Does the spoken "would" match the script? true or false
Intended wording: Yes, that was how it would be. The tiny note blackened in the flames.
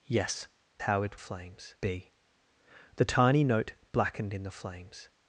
false